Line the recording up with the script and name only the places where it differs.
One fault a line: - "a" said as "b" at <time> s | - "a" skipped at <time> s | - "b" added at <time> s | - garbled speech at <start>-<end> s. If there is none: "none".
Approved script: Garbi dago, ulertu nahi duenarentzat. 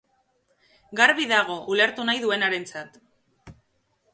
none